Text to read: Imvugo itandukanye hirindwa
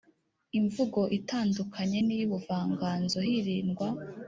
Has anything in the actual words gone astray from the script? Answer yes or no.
yes